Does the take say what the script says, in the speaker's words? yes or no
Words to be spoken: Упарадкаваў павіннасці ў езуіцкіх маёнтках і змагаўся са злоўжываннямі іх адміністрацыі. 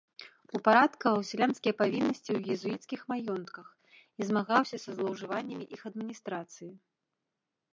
no